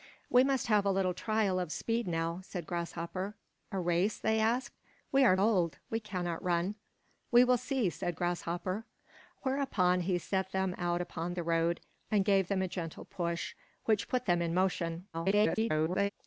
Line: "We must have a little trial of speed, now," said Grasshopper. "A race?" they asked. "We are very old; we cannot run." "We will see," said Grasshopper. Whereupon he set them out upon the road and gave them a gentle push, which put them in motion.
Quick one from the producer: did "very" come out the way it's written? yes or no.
no